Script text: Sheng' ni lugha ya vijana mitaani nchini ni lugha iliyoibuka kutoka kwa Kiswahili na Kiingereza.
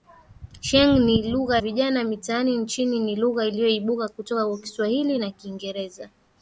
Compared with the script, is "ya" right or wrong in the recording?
wrong